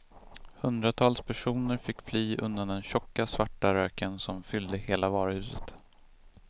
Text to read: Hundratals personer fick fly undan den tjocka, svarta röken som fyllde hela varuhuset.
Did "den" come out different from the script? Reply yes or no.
no